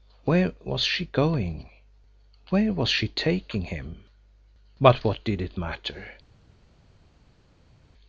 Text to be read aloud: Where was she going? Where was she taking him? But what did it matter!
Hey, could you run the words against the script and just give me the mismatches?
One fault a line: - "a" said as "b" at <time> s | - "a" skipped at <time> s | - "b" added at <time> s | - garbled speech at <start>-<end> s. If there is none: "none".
none